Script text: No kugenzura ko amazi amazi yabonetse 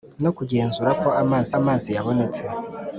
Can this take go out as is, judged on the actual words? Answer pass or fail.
pass